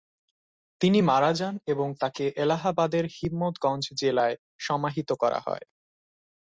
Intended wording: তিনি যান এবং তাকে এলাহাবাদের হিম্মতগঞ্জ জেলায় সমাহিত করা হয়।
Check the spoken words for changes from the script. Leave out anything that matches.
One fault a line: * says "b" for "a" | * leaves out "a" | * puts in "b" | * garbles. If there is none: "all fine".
* puts in "মারা"